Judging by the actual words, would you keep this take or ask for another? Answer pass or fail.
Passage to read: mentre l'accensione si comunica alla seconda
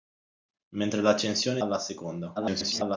fail